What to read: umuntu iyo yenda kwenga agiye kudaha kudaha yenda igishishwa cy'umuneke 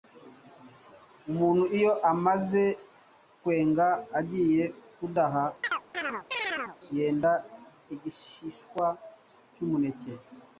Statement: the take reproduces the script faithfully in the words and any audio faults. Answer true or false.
false